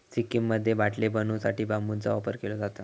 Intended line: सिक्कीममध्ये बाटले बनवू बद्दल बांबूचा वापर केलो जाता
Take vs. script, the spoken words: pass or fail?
fail